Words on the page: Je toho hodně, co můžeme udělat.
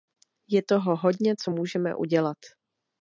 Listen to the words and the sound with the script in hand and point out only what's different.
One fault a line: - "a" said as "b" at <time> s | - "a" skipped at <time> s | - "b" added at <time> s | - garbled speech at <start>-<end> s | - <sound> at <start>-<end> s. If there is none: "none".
none